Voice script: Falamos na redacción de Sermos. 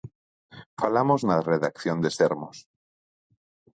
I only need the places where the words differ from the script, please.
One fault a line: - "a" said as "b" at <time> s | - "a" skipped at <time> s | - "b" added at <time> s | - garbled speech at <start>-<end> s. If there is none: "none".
none